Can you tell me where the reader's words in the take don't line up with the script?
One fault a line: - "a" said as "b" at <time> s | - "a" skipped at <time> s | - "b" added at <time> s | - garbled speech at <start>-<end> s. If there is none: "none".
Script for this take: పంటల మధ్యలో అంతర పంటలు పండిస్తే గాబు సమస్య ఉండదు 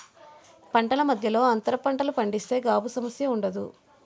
none